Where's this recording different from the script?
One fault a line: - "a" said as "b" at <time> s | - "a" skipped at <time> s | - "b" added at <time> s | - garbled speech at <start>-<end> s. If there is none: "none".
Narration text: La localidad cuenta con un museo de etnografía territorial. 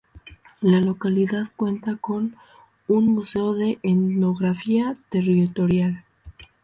none